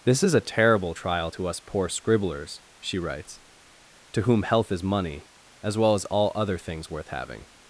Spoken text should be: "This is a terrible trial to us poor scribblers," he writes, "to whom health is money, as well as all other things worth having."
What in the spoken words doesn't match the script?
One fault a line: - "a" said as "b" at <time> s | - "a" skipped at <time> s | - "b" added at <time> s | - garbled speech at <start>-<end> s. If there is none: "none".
- "he" said as "she" at 2.8 s